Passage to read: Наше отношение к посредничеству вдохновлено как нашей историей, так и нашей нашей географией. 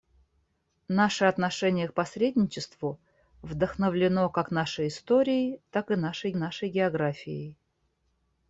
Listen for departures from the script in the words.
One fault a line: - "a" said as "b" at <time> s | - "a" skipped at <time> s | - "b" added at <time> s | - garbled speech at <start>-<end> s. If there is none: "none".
none